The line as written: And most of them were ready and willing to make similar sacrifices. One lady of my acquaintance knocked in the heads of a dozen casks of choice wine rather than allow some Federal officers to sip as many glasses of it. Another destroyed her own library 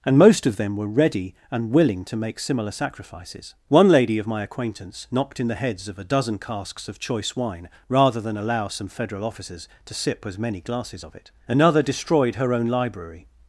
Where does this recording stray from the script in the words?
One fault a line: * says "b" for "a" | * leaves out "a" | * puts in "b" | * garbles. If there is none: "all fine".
all fine